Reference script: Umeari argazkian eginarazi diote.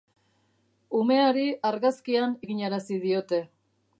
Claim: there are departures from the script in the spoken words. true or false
false